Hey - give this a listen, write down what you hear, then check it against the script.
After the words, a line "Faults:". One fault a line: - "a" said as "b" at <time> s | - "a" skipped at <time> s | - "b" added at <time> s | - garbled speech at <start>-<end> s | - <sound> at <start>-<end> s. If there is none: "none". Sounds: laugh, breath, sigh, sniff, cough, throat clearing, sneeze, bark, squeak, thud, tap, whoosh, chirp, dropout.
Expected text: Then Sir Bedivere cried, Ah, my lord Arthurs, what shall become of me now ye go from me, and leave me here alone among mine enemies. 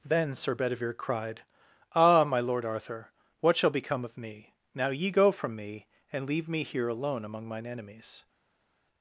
Then Sir Bedivere cried, Ah, my lord Arthur, what shall become of me now ye go from me, and leave me here alone among mine enemies.
Faults:
- "Arthurs" said as "Arthur" at 2.6 s